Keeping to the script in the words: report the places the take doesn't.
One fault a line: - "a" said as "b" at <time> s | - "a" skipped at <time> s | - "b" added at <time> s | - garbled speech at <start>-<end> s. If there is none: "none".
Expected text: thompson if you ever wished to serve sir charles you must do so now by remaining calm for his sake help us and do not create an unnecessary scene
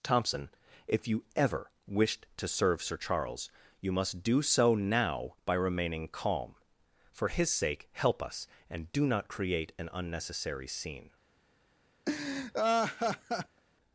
none